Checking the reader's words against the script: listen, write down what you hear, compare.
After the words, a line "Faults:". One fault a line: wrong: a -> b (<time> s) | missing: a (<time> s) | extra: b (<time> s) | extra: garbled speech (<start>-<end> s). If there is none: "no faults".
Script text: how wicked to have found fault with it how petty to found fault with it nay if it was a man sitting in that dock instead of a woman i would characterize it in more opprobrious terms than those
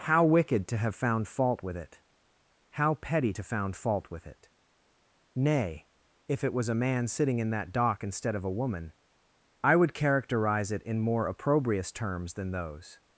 how wicked to have found fault with it how petty to found fault with it nay if it was a man sitting in that dock instead of a woman i would characterize it in more opprobrious terms than those
Faults:
no faults